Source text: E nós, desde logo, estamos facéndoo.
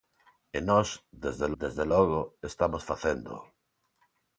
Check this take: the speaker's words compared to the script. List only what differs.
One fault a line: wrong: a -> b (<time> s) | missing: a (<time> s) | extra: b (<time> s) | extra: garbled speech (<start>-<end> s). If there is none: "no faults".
extra: desde (1.6 s)